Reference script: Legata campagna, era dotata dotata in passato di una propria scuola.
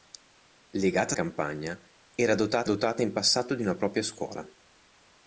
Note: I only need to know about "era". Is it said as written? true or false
true